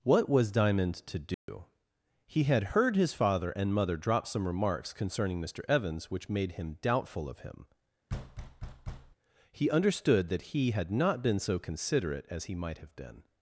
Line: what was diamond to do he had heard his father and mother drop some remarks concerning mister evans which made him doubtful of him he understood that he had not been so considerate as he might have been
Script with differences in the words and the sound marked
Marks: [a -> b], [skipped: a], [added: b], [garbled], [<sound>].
what was diamond to do [dropout] he had heard his father and mother drop some remarks concerning mister evans which made him doubtful of him [thud] he understood that he had not been so considerate as he might have been